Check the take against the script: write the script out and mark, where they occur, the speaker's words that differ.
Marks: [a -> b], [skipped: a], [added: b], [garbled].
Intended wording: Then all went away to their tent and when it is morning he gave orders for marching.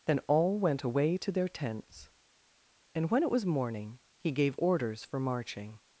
Then all went away to their [tent -> tents] and when it [is -> was] morning he gave orders for marching.